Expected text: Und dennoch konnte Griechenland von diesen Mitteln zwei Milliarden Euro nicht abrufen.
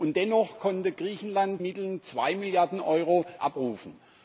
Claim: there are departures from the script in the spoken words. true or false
true